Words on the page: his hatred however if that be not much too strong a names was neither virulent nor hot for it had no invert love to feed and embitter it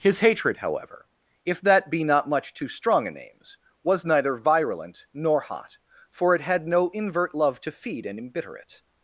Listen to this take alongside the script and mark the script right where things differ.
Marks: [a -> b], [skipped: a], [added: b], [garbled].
his hatred however if that be not much too strong a names was neither virulent nor hot for it had no invert love to feed and embitter it